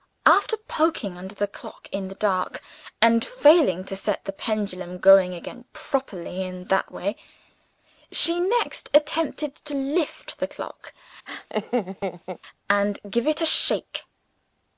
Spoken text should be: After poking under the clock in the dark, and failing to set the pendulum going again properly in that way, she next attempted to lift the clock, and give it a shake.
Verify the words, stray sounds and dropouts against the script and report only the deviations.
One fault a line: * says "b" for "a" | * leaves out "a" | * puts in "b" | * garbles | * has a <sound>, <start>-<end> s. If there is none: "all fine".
* has a laugh, 11.3-12.4 s